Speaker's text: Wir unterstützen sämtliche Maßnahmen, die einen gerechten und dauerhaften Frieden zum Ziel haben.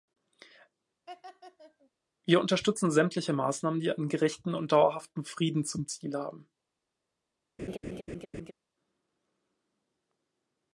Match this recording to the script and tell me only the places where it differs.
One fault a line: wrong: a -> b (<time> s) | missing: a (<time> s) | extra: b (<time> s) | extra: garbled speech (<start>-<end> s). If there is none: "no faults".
no faults